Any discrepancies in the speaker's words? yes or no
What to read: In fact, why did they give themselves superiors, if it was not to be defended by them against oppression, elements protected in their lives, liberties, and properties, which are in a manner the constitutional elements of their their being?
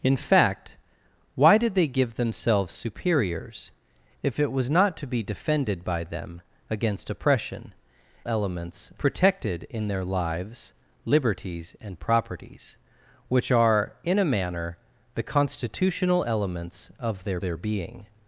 no